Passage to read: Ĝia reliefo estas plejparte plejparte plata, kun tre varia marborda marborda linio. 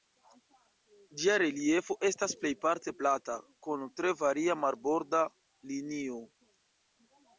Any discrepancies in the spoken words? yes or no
yes